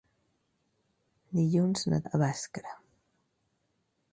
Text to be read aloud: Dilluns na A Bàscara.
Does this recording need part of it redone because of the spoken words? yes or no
no